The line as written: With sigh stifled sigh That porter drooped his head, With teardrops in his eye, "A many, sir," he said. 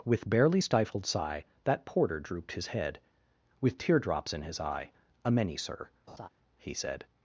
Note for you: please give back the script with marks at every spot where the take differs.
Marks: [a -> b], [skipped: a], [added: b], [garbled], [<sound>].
With [sigh -> barely] stifled sigh That porter drooped his head, With teardrops in his eye, "A many, sir," [laugh] he said.